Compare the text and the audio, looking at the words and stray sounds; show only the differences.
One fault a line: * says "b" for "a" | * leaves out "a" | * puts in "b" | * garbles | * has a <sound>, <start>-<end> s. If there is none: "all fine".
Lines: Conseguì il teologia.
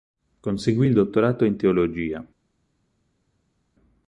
* puts in "dottorato in"